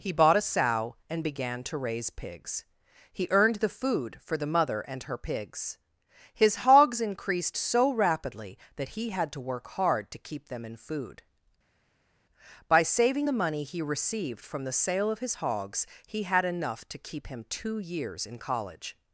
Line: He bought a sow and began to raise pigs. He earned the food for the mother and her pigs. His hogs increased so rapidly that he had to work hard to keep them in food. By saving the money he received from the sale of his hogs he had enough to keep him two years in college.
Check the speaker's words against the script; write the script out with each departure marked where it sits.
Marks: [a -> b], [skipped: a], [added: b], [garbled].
He bought a sow and began to raise pigs. He earned the food for the mother and her pigs. His hogs increased so rapidly that he had to work hard to keep them in food. By saving the money he received from the sale of his hogs he had enough to keep him two years in college.